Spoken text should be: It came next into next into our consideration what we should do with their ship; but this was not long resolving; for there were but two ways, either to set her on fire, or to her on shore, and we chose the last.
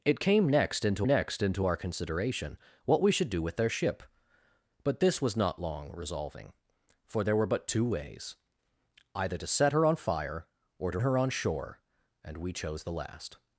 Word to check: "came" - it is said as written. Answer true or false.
true